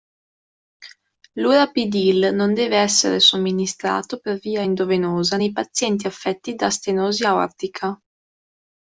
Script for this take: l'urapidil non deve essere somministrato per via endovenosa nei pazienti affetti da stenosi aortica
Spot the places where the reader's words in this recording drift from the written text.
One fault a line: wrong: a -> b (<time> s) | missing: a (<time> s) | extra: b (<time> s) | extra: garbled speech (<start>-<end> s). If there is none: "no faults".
no faults